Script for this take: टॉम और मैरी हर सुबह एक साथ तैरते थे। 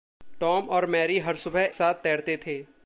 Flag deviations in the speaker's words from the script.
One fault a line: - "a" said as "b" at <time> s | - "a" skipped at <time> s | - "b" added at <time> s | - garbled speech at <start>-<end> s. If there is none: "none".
- "एक" skipped at 1.7 s